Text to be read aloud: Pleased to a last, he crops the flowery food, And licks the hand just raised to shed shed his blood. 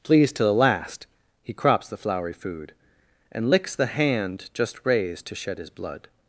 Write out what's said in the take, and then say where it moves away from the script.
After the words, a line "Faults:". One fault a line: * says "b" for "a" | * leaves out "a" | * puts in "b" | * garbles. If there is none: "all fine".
Pleased to the last, he crops the flowery food, And licks the hand just raised to shed his blood.
Faults:
* says "the" for "a"
* leaves out "shed"